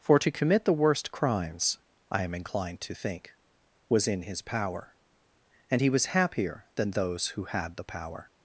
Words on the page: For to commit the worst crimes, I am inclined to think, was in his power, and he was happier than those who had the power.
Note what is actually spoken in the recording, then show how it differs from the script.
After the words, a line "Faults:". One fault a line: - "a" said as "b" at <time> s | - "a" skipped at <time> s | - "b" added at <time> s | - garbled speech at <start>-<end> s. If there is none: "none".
For to commit the worst crimes, I am inclined to think, was in his power, and he was happier than those who had the power.
Faults:
none